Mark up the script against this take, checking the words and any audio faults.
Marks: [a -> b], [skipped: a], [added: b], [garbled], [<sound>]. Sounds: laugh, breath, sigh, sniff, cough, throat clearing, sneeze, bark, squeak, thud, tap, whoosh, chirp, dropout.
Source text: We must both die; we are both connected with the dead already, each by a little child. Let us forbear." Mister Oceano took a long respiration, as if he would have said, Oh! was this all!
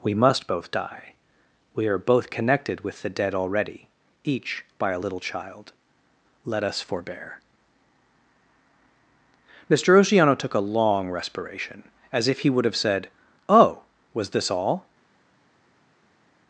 We must both die; we are both connected with the dead already, each by a little child. Let us forbear." Mister Oceano took a long respiration, as if he would have said, Oh! was this all!